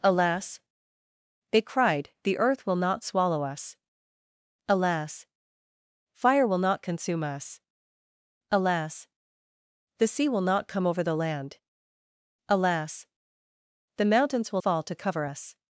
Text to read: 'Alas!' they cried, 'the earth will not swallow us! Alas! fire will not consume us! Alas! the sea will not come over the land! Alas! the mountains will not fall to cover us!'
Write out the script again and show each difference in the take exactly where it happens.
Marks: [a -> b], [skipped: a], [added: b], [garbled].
'Alas!' they cried, 'the earth will not swallow us! Alas! fire will not consume us! Alas! the sea will not come over the land! Alas! the mountains will [skipped: not] fall to cover us!'